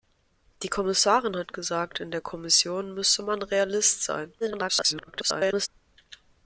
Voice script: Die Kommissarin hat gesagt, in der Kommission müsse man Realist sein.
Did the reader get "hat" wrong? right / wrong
right